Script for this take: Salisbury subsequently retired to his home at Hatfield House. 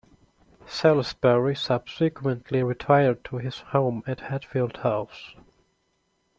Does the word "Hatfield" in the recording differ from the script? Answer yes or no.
no